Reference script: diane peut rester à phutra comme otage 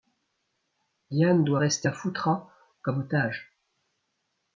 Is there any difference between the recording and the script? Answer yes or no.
yes